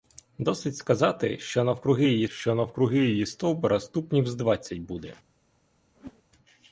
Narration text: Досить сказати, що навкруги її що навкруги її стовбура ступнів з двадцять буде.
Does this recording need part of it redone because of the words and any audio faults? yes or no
yes